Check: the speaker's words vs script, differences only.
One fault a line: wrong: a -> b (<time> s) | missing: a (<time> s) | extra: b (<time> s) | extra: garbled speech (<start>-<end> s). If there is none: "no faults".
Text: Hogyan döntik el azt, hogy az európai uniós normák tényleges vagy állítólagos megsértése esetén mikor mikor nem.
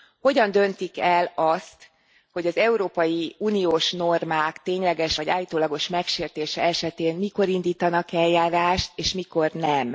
extra: indítanak eljárást és (7.5 s)